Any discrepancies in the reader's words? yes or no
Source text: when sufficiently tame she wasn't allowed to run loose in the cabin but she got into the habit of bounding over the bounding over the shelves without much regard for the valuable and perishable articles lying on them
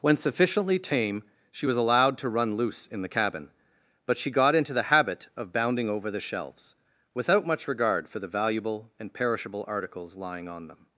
yes